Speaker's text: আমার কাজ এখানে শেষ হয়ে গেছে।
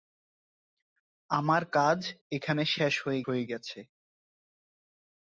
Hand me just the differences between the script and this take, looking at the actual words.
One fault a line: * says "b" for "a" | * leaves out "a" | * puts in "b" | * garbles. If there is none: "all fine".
* puts in "হয়ে"